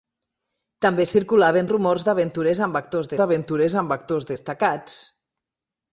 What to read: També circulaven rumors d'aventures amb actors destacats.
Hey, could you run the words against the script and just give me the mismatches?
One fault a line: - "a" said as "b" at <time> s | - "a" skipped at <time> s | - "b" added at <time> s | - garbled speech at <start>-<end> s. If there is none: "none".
- "d'aventures amb actors" added at 3.2 s